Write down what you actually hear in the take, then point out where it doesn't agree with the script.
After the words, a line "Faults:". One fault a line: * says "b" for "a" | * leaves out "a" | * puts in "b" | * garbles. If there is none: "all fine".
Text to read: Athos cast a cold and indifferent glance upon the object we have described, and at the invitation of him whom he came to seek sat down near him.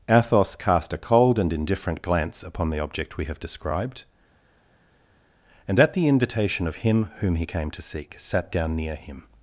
Athos cast a cold and indifferent glance upon the object we have described, and at the invitation of him whom he came to seek sat down near him.
Faults:
all fine